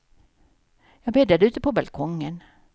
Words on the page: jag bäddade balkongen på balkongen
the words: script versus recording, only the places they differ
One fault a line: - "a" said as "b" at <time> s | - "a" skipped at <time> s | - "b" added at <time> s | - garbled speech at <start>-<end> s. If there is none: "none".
- "balkongen" said as "ute" at 1.4 s